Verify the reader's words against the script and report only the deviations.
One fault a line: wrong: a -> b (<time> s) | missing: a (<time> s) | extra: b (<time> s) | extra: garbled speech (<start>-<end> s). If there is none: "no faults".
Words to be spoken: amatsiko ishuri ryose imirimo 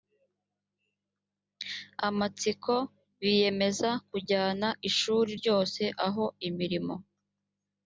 extra: biyemeza kujyana (3.2 s)
extra: aho (6.1 s)